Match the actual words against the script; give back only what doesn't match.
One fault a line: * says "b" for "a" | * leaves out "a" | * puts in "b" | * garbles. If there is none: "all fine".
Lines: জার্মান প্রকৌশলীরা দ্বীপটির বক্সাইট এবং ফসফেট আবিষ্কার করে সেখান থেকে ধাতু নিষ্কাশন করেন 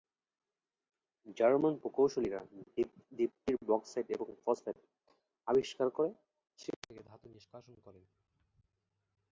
all fine